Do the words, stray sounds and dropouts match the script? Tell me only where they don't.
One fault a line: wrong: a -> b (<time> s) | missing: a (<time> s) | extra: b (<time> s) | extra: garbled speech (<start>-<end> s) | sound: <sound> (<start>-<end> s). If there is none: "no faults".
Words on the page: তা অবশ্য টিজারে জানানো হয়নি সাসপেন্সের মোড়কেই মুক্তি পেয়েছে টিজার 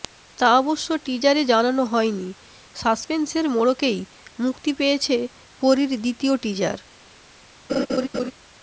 extra: পরীর দ্বিতীয় (5.6 s)
sound: laugh (7.7-8.3 s)